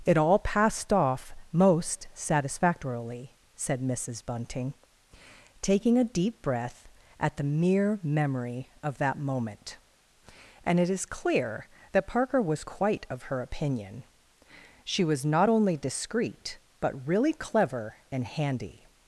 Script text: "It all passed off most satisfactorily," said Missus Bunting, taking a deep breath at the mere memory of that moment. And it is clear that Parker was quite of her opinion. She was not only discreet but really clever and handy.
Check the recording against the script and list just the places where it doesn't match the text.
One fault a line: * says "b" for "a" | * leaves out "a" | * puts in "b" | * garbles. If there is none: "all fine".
all fine